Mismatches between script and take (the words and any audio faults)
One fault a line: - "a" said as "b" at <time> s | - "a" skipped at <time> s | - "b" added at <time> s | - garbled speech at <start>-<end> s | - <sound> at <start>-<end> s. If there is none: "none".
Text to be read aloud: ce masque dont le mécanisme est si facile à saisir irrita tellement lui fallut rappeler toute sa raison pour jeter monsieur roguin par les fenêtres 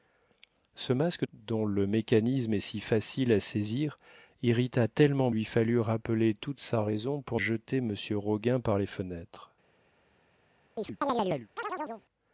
- chirp at 10.8-12.1 s